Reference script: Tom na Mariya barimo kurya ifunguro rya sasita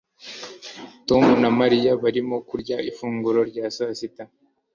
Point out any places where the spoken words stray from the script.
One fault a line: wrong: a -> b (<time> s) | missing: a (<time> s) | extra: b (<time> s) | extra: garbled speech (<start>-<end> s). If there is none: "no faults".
no faults